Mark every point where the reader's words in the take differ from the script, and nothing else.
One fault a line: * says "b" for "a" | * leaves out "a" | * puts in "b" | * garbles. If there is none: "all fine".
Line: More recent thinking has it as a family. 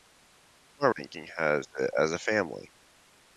* leaves out "recent"